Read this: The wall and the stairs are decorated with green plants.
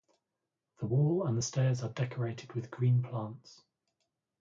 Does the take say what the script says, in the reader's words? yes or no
yes